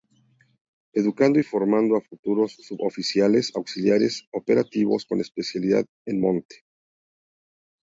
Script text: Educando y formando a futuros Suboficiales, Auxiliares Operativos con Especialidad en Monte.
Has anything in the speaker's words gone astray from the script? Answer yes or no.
no